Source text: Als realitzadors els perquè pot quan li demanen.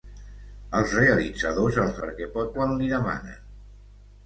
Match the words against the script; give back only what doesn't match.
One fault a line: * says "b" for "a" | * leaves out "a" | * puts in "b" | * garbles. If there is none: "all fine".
all fine